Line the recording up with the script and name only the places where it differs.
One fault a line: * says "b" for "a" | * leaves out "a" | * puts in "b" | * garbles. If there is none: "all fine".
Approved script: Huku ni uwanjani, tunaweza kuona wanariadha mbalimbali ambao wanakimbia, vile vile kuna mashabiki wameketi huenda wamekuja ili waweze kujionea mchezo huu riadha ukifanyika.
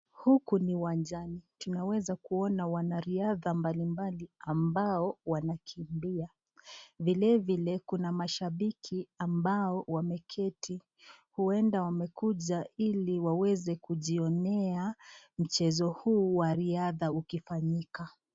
* puts in "ambao"
* puts in "wa"